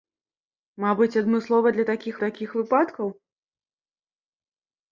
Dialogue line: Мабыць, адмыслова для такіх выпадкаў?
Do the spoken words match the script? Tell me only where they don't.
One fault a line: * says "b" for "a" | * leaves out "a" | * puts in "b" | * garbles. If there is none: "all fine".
* puts in "такіх"